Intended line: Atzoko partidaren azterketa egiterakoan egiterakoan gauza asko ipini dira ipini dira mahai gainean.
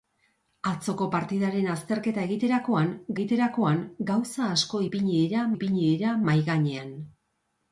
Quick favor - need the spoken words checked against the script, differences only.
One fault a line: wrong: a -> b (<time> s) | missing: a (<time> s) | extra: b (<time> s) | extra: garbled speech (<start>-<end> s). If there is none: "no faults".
no faults